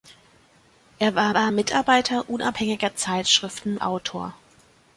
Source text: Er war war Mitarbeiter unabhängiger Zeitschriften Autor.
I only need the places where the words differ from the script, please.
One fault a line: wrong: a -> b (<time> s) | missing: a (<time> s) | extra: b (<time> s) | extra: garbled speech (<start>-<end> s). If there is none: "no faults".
no faults